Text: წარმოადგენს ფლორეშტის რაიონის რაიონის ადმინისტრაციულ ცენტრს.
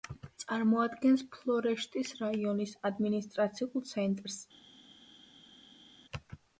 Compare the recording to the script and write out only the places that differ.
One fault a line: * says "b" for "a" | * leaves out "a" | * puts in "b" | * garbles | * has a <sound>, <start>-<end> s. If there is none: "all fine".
* leaves out "რაიონის"